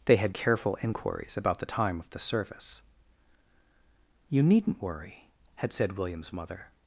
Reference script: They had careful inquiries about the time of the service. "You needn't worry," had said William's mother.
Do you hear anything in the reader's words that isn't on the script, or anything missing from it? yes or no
no